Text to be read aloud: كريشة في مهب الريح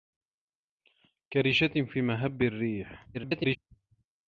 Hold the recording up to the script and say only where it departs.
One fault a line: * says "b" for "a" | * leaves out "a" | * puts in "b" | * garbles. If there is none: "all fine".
* garbles